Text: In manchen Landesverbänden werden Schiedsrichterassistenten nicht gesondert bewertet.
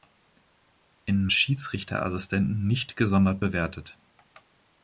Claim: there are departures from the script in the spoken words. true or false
true